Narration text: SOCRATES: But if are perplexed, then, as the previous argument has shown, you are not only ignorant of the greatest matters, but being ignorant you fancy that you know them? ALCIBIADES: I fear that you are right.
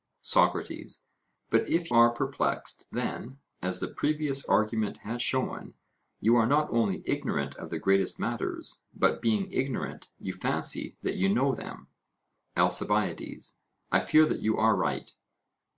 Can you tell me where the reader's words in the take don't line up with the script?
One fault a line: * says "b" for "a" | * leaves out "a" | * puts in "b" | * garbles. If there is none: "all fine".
all fine